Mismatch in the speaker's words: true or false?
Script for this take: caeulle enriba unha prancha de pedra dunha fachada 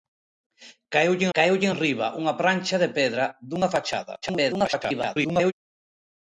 true